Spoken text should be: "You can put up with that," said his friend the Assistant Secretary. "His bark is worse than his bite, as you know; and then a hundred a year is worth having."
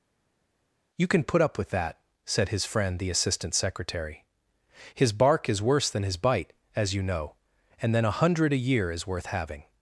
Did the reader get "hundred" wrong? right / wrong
right